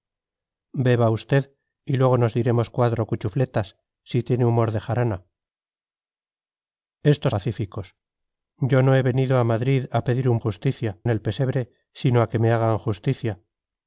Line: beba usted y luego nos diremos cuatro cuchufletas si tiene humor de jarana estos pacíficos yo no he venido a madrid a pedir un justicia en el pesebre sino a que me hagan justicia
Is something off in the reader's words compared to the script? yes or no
no